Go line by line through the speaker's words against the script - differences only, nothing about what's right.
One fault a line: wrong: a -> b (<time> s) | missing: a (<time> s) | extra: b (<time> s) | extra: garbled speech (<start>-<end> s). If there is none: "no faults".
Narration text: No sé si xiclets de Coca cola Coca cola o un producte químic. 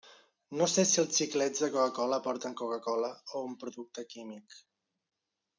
extra: els (1.0 s)
extra: porten (2.3 s)